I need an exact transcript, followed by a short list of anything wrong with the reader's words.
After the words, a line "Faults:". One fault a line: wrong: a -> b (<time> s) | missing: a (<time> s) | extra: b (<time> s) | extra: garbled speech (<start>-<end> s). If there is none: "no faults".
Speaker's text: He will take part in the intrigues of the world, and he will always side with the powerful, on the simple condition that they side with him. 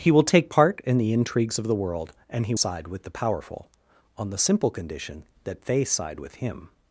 He will take part in the intrigues of the world, and he side with the powerful, on the simple condition that they side with him.
Faults:
missing: will always (2.5 s)